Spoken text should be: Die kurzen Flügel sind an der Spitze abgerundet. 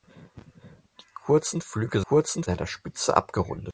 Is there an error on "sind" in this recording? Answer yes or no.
yes